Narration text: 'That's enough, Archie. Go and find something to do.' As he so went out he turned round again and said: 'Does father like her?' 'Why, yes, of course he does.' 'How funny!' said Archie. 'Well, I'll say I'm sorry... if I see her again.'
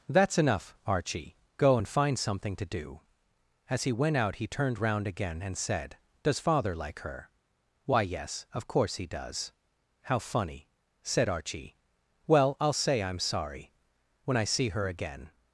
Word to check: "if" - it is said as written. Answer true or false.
false